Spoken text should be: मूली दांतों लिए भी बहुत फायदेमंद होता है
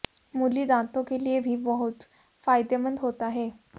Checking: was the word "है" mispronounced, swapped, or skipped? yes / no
no